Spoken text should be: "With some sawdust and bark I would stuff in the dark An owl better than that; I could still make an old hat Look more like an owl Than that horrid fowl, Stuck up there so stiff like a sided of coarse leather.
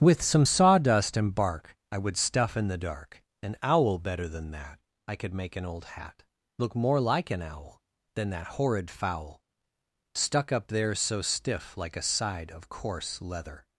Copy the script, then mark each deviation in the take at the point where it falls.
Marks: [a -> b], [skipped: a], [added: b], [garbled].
"With some sawdust and bark I would stuff in the dark An owl better than that; I could [skipped: still] make an old hat Look more like an owl Than that horrid fowl, Stuck up there so stiff like a [sided -> side] of coarse leather.